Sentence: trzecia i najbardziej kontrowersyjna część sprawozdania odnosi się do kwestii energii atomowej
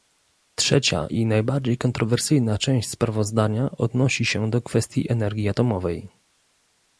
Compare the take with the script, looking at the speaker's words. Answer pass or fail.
pass